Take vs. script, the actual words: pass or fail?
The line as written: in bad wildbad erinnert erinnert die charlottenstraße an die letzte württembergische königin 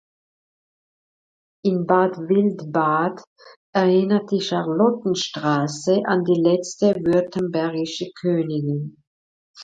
fail